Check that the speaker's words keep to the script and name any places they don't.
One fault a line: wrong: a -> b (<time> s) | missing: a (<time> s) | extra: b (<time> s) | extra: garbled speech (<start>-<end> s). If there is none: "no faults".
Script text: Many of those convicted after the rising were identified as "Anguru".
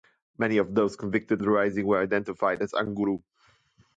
missing: after (1.4 s)